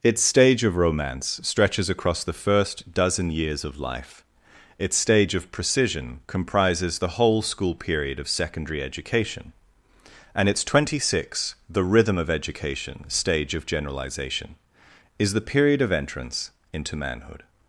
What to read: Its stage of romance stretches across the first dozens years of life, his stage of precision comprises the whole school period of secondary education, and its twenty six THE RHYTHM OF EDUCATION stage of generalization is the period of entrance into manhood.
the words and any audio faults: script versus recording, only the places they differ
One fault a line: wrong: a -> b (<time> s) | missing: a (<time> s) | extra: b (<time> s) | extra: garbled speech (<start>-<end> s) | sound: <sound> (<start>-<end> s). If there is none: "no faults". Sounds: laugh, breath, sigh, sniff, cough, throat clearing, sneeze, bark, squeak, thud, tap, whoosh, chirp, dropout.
wrong: dozens -> dozen (2.9 s)
wrong: his -> its (4.8 s)